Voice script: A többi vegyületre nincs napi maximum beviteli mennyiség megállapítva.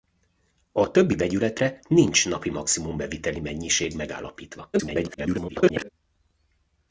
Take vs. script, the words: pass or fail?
fail